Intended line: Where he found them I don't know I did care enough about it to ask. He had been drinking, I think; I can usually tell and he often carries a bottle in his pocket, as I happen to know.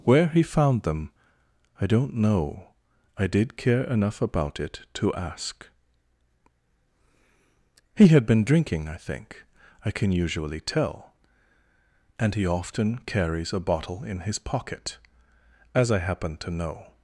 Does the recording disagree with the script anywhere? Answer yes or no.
no